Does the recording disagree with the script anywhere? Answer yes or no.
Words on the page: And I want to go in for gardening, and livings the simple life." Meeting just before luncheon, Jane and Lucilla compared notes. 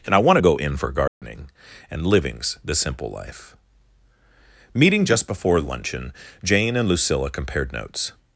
no